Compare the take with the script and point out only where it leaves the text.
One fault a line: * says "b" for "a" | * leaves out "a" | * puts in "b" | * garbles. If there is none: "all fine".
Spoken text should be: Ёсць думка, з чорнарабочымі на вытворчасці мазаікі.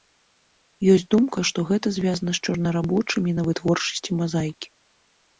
* puts in "што гэта звязана"